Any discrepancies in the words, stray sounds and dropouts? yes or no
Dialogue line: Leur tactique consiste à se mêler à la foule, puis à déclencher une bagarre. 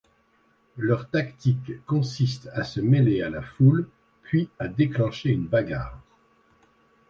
no